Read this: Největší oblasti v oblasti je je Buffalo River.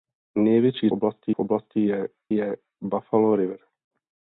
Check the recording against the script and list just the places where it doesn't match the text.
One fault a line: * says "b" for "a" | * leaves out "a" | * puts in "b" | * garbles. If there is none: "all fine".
all fine